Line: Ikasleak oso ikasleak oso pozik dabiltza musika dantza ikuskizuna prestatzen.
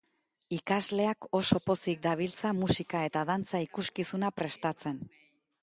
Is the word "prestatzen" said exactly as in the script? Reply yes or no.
yes